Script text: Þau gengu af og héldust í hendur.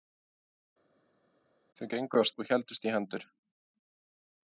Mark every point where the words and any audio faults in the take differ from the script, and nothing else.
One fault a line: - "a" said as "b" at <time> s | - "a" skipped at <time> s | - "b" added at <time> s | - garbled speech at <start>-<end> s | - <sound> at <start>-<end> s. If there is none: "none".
none